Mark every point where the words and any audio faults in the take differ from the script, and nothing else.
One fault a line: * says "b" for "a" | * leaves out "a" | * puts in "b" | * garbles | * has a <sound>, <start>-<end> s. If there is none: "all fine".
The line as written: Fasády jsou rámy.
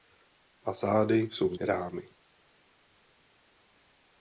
all fine